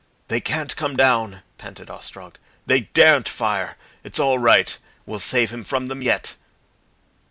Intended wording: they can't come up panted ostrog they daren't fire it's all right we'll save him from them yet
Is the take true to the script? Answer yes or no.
no